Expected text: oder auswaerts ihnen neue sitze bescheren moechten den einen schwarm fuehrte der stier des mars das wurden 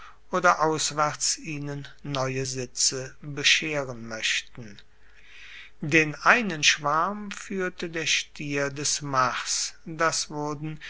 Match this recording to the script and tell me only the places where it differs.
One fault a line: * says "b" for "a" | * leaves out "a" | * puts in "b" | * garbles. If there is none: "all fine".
all fine